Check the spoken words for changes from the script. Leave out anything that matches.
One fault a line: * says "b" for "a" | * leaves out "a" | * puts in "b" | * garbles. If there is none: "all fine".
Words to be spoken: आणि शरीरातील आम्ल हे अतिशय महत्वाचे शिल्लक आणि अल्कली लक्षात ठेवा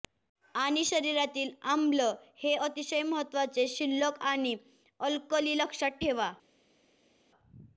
all fine